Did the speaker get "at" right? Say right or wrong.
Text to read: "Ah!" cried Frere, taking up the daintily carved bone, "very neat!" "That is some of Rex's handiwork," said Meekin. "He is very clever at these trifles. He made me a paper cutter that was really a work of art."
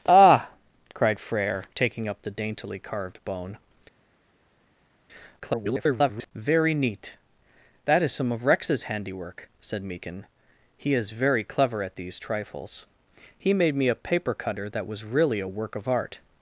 right